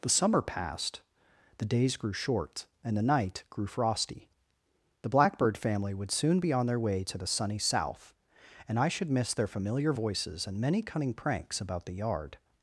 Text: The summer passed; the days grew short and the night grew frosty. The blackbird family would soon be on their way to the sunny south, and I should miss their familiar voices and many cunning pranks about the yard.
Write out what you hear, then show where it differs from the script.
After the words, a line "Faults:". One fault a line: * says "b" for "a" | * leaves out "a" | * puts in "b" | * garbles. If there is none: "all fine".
The summer passed; the days grew short and the night grew frosty. The blackbird family would soon be on their way to the sunny south, and I should miss their familiar voices and many cunning pranks about the yard.
Faults:
all fine